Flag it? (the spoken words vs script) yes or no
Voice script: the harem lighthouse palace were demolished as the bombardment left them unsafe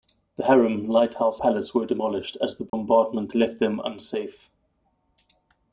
no